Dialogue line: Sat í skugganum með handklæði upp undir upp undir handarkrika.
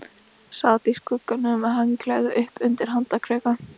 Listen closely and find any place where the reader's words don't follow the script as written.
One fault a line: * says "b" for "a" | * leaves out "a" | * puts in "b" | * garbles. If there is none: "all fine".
* leaves out "upp undir"